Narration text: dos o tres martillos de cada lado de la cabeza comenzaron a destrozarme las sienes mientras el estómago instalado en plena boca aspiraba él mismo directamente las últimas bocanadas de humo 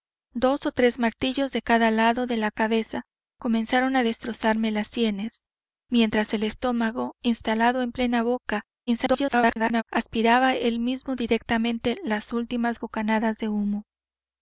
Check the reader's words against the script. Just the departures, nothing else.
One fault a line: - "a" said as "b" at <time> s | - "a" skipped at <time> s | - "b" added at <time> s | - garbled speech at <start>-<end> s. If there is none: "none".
- garbled speech at 8.9-9.8 s